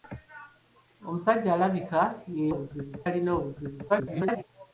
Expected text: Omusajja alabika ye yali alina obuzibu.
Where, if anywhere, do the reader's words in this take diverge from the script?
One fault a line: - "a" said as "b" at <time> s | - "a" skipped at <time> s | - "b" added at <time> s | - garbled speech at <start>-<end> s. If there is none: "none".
- "yali" said as "obuzibu" at 2.5 s
- garbled speech at 3.9-4.4 s